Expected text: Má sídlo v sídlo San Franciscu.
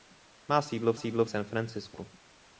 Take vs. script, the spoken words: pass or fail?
pass